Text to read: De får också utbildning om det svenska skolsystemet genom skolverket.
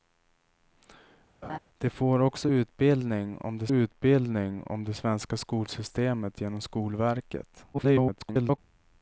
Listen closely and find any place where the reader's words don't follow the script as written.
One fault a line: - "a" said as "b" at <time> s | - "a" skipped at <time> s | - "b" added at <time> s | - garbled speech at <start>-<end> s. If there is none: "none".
- "utbildning om det" added at 3.7 s
- garbled speech at 7.7-8.6 s